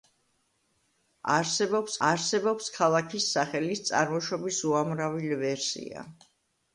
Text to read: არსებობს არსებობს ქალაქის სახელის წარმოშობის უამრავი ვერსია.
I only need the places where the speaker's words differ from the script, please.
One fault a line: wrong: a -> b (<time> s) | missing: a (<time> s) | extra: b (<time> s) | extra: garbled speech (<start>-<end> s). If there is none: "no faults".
no faults